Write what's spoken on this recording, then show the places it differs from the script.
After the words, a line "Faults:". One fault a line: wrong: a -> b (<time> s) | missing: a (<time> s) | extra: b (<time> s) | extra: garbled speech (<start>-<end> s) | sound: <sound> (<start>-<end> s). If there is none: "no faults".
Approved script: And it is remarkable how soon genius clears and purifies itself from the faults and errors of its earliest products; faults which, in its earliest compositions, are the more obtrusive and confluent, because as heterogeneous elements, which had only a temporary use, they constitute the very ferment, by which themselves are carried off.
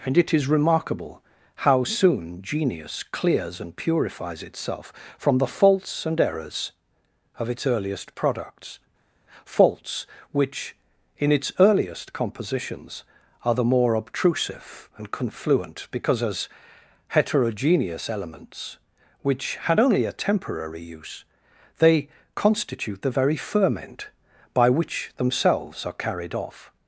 And it is remarkable how soon genius clears and purifies itself from the faults and errors of its earliest products; faults which, in its earliest compositions, are the more obtrusive and confluent, because as heterogeneous elements, which had only a temporary use, they constitute the very ferment, by which themselves are carried off.
Faults:
no faults